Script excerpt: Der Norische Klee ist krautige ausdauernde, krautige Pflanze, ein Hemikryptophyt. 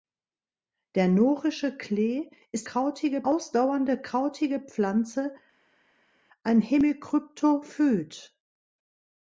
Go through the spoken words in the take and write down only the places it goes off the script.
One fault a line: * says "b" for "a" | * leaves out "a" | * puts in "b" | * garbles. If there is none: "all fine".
all fine